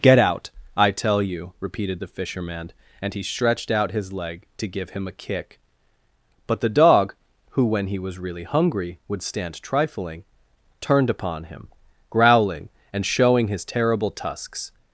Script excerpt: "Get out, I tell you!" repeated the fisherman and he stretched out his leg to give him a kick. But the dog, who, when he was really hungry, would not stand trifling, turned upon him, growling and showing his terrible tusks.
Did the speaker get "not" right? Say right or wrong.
wrong